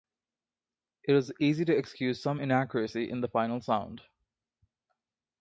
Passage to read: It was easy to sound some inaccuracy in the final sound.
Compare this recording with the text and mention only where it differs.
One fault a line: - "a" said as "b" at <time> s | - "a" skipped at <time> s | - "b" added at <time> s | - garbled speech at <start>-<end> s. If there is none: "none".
- "sound" said as "excuse" at 1.8 s